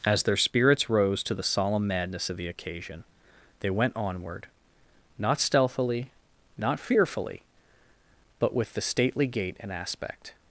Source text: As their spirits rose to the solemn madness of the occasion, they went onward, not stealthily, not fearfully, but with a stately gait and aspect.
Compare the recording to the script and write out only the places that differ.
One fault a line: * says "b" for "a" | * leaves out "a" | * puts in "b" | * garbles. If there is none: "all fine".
* says "the" for "a"